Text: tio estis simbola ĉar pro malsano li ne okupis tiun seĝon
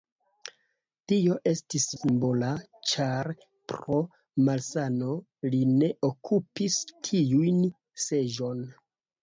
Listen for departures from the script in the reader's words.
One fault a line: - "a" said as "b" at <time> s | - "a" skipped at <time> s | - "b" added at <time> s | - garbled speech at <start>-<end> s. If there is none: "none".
none